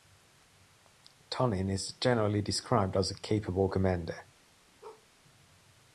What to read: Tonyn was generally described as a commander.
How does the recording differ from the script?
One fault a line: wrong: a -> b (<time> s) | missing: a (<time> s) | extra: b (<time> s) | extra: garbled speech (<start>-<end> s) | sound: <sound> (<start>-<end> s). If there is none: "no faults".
wrong: was -> is (1.7 s)
extra: capable (3.1 s)
sound: bark (4.8-5.1 s)